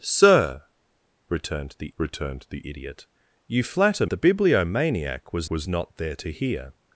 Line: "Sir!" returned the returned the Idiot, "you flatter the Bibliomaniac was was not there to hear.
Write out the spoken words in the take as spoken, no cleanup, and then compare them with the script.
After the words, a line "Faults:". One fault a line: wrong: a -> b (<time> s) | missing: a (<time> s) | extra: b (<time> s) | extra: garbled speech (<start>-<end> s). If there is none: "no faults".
"Sir!" returned the returned the Idiot, "you flatter the Bibliomaniac was was not there to hear.
Faults:
no faults